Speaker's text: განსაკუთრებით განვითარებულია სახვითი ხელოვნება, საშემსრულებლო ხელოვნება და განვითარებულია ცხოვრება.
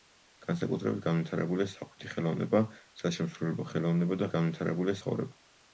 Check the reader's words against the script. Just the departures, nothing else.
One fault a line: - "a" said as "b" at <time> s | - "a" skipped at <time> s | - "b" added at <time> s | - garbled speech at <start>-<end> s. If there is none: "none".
none